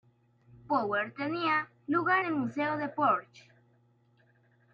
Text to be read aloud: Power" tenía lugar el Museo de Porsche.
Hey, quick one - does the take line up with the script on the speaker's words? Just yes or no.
yes